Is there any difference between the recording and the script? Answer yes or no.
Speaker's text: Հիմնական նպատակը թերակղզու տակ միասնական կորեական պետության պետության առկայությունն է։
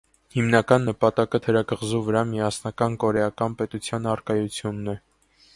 yes